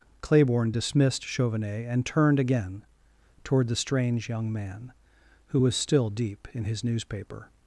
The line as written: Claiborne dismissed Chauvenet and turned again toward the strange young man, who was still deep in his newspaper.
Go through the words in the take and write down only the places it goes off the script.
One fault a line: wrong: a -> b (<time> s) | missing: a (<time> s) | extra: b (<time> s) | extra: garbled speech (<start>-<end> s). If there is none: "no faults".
no faults